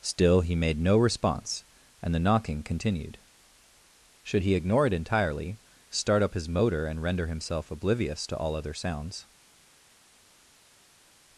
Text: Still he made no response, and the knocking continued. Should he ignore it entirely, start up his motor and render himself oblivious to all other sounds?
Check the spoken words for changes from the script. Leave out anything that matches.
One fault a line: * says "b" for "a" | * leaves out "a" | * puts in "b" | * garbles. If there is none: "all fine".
all fine